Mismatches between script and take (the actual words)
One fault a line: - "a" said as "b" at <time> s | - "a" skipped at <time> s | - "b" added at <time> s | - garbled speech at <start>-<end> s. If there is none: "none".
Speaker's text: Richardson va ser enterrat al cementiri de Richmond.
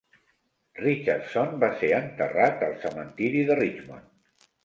none